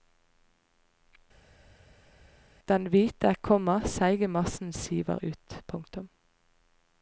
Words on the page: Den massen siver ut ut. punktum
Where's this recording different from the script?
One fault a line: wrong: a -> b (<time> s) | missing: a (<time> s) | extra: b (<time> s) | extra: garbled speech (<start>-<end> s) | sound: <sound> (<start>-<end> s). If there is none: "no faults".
extra: hvite komma seige (2.9 s)
missing: ut (5.6 s)